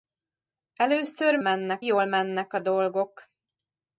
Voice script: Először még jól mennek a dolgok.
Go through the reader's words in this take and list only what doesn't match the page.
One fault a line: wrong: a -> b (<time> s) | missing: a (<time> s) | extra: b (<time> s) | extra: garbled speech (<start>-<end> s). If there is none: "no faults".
wrong: még -> mennek (1.4 s)